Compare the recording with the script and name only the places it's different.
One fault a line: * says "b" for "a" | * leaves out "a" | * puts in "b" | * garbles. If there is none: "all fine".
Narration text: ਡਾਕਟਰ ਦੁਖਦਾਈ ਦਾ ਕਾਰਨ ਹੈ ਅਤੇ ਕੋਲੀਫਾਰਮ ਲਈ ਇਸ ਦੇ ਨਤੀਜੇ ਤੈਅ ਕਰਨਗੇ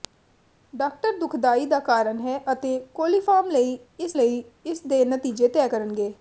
* puts in "ਲਈ ਇਸ"